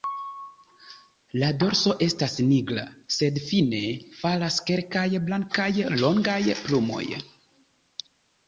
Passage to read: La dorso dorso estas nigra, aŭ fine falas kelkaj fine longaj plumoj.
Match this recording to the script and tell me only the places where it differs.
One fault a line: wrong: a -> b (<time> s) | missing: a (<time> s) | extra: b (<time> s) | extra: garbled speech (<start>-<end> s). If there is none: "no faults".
missing: dorso (1.9 s)
wrong: aŭ -> sed (3.2 s)
wrong: fine -> blankaj (5.3 s)